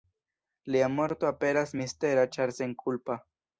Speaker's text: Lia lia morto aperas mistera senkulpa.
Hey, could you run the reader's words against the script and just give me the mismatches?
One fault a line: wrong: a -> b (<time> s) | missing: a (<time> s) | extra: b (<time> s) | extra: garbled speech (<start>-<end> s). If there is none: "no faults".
missing: lia (0.9 s)
extra: ĉar (2.4 s)